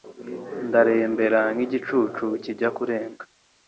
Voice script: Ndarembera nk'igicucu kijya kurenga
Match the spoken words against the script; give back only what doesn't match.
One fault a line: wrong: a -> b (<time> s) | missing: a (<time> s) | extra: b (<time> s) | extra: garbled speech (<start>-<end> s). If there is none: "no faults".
no faults